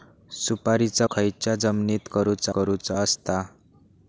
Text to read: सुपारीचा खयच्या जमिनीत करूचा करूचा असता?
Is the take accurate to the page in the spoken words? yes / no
yes